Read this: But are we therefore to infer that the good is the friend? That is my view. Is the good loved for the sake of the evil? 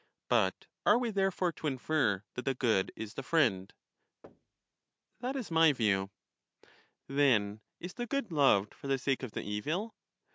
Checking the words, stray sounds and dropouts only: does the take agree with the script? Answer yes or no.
no